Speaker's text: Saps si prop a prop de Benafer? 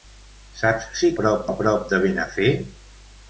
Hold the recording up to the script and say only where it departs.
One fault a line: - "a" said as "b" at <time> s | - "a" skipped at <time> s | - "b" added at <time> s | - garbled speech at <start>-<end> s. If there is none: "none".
none